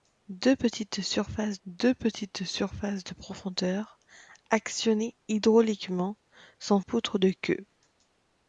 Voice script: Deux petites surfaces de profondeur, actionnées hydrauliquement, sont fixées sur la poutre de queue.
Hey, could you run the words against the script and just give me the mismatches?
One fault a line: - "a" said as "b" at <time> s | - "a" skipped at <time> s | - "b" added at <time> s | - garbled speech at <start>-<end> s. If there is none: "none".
- "deux petites surfaces" added at 1.7 s
- "fixées sur la" skipped at 6.8 s